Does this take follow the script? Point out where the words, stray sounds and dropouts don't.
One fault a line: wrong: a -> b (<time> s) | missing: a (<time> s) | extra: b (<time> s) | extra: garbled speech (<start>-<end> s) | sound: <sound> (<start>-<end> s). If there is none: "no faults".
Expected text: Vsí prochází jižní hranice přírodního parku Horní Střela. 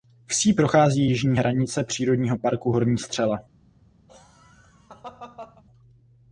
sound: laugh (4.1-5.6 s)